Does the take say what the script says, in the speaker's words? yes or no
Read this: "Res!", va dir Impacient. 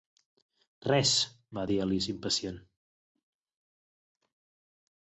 no